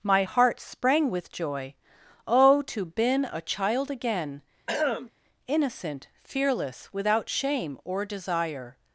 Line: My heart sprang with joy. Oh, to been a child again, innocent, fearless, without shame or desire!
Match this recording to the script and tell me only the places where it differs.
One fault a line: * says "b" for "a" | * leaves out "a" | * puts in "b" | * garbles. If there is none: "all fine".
all fine